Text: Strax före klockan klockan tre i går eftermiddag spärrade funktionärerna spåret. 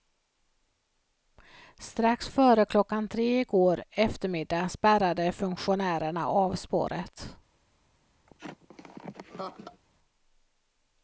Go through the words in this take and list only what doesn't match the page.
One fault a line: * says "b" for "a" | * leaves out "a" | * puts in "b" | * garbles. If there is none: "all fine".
* leaves out "klockan"
* puts in "av"